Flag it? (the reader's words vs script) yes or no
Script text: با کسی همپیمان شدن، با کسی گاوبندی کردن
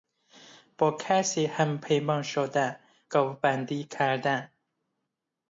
yes